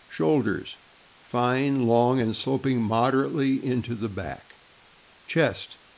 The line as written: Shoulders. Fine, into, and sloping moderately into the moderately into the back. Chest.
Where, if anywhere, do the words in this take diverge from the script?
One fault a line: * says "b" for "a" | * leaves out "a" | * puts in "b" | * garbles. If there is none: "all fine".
* says "long" for "into"
* leaves out "moderately into the"